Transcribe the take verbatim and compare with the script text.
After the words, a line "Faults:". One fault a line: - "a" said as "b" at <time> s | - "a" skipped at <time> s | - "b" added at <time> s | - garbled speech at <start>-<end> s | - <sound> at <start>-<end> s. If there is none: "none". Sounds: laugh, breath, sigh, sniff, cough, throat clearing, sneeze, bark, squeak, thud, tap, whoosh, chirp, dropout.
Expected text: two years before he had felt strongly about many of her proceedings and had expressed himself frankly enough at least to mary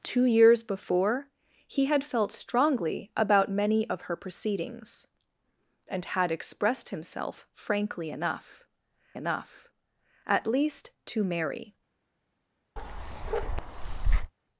two years before he had felt strongly about many of her proceedings and had expressed himself frankly enough enough at least to mary
Faults:
- "enough" added at 9.1 s
- bark at 12.8-14.3 s